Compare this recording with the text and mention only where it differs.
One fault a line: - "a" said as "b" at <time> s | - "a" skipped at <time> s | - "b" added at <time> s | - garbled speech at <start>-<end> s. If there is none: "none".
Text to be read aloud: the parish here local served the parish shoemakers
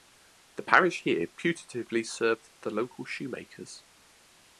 - "local" said as "putatively" at 1.3 s
- "parish" said as "local" at 2.7 s